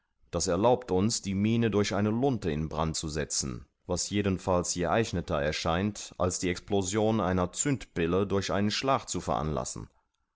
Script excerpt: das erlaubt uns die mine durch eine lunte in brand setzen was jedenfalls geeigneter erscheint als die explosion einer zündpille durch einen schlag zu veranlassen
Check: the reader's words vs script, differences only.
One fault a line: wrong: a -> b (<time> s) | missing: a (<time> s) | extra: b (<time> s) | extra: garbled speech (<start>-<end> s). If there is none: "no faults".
extra: zu (2.9 s)